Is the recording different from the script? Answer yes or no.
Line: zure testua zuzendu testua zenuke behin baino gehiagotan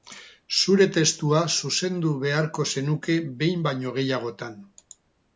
yes